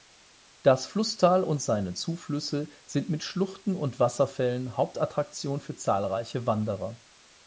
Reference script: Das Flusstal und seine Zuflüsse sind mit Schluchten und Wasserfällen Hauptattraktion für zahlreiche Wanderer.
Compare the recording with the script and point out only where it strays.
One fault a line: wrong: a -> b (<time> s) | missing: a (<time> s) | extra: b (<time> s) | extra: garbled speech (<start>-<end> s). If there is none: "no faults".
no faults